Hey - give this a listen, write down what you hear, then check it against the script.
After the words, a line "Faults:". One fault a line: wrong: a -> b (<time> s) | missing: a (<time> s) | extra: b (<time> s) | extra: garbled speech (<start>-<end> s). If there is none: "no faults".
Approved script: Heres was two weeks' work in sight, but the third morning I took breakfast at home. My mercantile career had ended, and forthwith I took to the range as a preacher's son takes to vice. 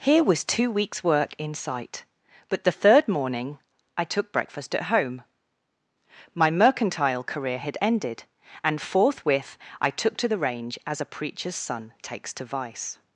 Here was two weeks' work in sight, but the third morning I took breakfast at home. My mercantile career had ended, and forthwith I took to the range as a preacher's son takes to vice.
Faults:
wrong: Heres -> Here (0.0 s)